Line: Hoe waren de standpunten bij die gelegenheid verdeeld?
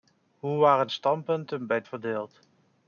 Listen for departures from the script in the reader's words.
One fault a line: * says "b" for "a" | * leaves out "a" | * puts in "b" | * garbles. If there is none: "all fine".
* leaves out "de"
* leaves out "die gelegenheid"